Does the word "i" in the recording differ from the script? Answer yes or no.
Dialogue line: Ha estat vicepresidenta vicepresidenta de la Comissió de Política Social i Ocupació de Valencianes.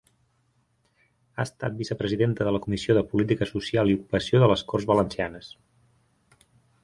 no